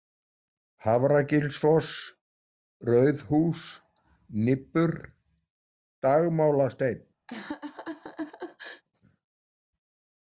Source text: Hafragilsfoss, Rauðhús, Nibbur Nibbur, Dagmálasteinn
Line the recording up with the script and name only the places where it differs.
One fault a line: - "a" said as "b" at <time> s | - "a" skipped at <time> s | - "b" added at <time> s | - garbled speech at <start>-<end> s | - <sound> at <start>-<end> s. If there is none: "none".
- "Nibbur" skipped at 5.0 s
- laugh at 7.3-8.8 s